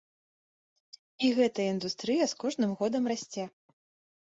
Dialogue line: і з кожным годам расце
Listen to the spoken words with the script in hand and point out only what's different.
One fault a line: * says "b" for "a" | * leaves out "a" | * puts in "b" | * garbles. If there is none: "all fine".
* puts in "гэтая індустрыя"